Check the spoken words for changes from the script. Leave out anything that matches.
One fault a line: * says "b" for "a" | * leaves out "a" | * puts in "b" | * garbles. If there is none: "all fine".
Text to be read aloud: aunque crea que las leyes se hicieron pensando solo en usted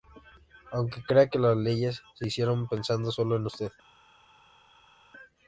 all fine